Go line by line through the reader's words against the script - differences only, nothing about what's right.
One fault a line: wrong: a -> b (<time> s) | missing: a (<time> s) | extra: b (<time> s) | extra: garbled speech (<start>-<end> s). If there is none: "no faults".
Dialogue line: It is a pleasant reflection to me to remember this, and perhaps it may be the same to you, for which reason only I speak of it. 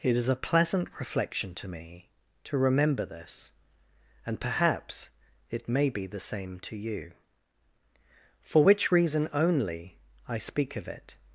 no faults